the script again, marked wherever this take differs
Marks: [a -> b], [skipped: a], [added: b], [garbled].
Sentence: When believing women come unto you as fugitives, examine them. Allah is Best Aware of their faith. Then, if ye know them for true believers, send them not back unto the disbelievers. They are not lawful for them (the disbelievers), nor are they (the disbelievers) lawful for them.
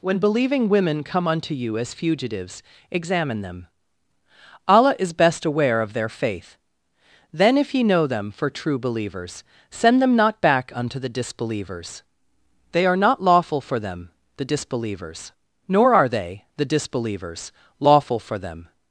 When believing women come unto you as fugitives, examine them. Allah is Best Aware of their faith. Then, if ye know them for true believers, send them not back unto the disbelievers. They are not lawful for them (the disbelievers), nor are they (the disbelievers) lawful for them.